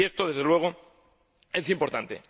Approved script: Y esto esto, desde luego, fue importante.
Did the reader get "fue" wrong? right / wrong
wrong